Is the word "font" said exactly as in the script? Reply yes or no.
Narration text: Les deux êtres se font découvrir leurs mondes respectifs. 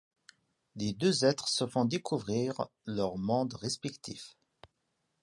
yes